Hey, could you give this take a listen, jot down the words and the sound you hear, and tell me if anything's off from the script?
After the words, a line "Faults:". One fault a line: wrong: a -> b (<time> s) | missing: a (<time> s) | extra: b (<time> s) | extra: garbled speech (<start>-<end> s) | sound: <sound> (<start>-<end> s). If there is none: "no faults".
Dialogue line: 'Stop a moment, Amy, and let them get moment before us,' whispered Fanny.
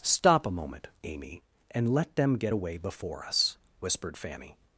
'Stop a moment, Amy, and let them get away before us,' whispered Fanny.
Faults:
wrong: moment -> away (2.5 s)